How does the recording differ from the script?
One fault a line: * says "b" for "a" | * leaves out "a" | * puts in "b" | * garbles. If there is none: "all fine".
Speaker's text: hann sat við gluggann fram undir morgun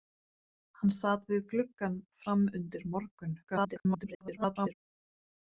* garbles